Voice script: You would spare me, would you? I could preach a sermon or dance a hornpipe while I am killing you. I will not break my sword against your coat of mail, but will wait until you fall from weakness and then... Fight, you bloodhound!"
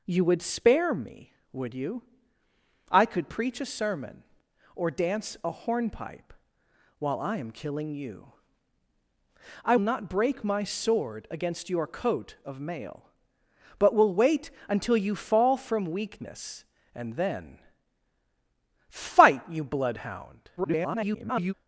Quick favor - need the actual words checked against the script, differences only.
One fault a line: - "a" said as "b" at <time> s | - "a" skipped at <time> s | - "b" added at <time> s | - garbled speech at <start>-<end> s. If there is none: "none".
- "will" skipped at 9.8 s
- garbled speech at 20.6-21.5 s